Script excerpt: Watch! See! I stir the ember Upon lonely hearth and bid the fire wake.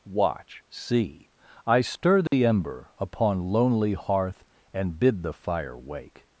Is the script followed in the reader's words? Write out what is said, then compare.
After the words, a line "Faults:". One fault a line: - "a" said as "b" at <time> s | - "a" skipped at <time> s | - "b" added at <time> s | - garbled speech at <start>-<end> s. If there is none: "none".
Watch! See! I stir the ember Upon lonely hearth and bid the fire wake.
Faults:
none